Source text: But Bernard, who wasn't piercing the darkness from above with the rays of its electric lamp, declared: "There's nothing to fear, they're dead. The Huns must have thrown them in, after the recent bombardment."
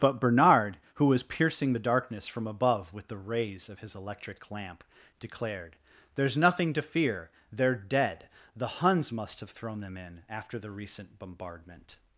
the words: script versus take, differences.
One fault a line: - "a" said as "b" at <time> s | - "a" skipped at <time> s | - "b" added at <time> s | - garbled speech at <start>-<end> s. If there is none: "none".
- "wasn't" said as "was" at 1.1 s
- "its" said as "his" at 3.8 s